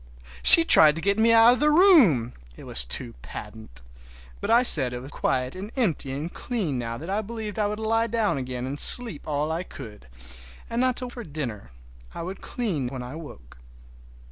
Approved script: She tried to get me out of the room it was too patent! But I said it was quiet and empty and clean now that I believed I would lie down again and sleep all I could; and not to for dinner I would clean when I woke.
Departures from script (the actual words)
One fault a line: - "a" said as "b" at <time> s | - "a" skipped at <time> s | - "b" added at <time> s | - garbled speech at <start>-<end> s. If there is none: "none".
none